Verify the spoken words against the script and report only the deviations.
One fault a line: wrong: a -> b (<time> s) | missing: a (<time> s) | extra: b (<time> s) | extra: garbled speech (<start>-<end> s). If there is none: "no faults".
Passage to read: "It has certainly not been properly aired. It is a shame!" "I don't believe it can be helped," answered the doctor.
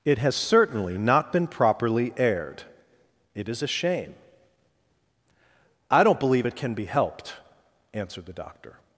no faults